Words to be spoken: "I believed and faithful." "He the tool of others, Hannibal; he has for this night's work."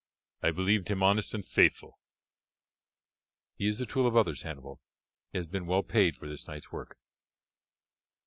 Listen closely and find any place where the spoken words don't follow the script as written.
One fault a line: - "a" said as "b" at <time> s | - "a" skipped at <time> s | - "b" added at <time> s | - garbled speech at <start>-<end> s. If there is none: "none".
- "him honest" added at 0.9 s
- "is" added at 3.7 s
- "been well paid" added at 5.5 s